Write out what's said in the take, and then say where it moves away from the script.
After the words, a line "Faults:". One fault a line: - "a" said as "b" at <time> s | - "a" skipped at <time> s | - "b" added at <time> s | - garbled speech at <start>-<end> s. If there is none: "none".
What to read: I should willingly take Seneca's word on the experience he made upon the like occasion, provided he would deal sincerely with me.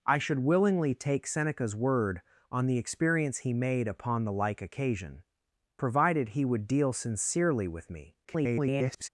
I should willingly take Seneca's word on the experience he made upon the like occasion, provided he would deal sincerely with me. [garbled]
Faults:
- garbled speech at 8.2-9.1 s